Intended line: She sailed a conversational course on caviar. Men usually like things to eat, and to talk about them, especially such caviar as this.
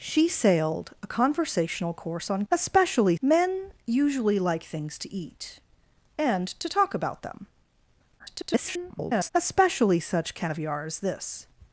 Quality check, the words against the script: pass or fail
fail